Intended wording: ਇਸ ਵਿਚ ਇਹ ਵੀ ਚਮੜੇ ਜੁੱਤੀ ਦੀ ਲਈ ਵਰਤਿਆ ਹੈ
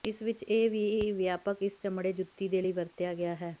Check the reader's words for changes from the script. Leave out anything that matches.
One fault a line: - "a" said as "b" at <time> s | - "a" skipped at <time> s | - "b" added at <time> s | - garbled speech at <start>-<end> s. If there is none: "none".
- "ਵਿਆਪਕ ਇਸ" added at 1.1 s
- "ਦੀ" said as "ਦੇ" at 2.5 s
- "ਗਿਆ" added at 3.1 s